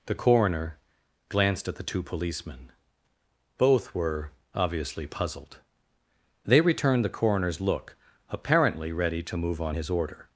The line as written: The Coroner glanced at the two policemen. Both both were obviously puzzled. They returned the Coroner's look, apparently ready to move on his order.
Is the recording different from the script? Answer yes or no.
yes